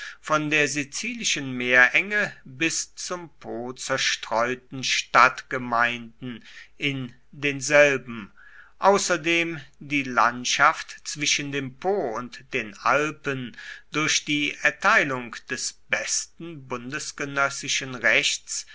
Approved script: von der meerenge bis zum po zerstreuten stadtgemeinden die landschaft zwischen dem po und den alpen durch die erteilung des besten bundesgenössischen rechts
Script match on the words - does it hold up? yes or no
no